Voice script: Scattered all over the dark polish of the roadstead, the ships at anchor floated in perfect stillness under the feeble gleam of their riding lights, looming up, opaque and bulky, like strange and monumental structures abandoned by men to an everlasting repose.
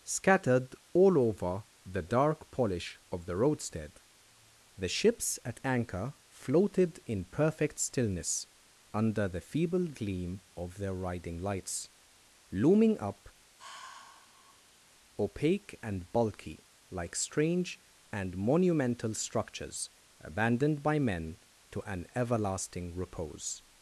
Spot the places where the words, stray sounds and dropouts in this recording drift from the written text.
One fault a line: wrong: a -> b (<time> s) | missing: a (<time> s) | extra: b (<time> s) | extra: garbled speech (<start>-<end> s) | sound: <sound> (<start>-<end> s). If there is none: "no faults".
sound: sigh (13.6-14.8 s)